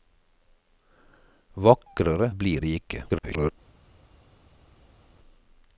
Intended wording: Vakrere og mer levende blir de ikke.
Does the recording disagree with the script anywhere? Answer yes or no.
yes